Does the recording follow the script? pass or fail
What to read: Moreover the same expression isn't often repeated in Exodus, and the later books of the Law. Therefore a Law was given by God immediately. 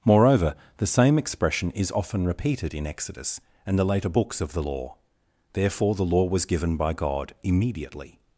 fail